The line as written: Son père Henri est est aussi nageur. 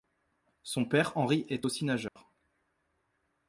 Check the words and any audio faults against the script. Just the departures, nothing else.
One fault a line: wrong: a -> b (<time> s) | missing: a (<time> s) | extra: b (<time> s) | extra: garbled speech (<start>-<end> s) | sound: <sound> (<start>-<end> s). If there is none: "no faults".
missing: est (1.7 s)
sound: dropout (2.1-2.2 s)